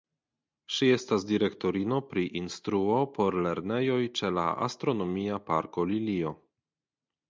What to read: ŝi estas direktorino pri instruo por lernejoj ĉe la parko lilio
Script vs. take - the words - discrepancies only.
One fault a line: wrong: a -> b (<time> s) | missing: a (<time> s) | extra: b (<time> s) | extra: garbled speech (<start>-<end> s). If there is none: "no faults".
extra: astronomia (4.7 s)